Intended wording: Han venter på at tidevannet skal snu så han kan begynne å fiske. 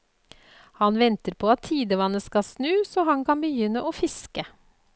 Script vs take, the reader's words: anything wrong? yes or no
no